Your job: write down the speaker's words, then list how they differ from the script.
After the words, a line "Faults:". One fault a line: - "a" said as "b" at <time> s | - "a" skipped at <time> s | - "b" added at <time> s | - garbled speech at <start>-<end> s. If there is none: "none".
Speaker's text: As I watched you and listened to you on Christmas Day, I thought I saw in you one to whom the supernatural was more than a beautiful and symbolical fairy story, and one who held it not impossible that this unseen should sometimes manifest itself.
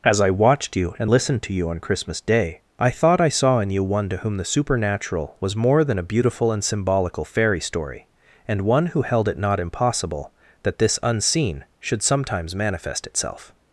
As I watched you and listened to you on Christmas Day, I thought I saw in you one to whom the supernatural was more than a beautiful and symbolical fairy story, and one who held it not impossible that this unseen should sometimes manifest itself.
Faults:
none